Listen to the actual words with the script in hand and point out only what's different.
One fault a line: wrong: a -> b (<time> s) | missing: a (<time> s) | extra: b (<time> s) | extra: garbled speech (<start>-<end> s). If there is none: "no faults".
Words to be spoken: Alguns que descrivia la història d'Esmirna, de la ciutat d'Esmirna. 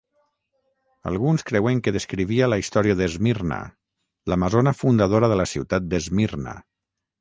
extra: creuen (1.5 s)
extra: l'amazona fundadora (4.3 s)